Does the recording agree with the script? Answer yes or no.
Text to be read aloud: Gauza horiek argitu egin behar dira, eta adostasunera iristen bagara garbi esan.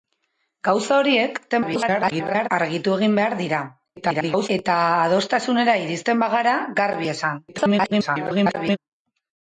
no